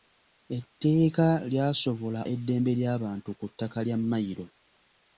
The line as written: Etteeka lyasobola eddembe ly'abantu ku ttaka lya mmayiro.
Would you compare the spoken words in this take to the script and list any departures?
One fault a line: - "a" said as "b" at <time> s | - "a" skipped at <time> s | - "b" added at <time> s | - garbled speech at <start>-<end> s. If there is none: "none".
none